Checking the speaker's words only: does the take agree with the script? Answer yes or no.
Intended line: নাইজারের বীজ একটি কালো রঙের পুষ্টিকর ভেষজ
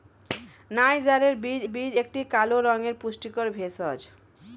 no